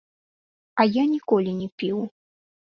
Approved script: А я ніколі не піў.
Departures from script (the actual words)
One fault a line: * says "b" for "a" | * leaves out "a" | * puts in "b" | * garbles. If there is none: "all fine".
all fine